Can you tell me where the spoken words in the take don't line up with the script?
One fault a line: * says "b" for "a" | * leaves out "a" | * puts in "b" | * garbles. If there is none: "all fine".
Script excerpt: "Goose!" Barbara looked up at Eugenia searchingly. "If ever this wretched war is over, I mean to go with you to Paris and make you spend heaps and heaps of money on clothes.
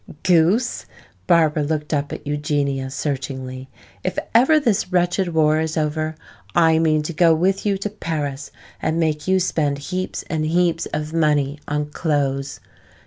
all fine